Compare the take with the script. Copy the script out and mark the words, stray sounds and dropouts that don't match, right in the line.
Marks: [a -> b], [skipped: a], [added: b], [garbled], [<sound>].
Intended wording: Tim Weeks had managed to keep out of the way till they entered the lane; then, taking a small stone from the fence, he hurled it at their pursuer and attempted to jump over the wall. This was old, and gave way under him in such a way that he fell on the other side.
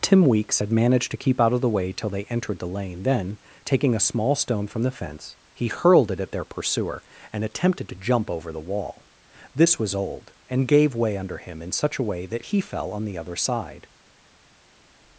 Tim Weeks had managed to keep out of the way till they entered the lane; then, taking a small stone from the fence, he hurled it at their pursuer and attempted to jump over the wall. This was old, and gave way under him in such a way that he fell on the other side.